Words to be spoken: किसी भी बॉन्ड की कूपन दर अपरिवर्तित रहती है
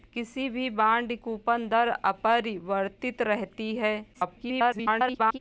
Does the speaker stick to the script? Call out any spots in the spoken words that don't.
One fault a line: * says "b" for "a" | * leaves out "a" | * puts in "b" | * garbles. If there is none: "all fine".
* leaves out "की"
* garbles